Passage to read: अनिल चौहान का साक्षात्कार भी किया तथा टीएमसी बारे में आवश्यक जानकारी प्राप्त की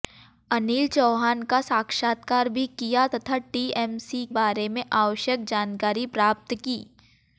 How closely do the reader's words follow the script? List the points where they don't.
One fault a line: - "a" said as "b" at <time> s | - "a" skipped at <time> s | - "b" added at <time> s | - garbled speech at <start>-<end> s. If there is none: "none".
none